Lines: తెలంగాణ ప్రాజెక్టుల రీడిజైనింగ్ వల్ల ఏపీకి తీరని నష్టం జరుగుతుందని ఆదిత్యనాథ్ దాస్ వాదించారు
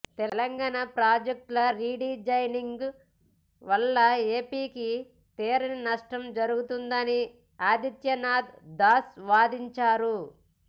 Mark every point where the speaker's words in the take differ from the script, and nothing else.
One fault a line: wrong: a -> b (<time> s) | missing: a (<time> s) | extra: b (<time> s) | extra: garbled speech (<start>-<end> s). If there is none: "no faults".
no faults